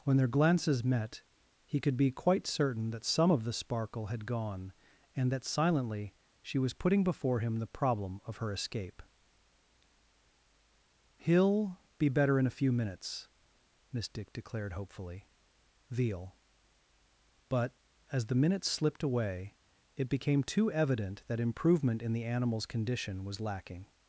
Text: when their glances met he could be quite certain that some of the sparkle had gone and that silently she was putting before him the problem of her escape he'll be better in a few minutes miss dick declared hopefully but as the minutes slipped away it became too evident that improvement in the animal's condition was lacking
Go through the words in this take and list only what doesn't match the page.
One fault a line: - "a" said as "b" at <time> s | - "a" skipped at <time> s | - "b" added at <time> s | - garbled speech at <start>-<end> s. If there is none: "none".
- "veal" added at 15.9 s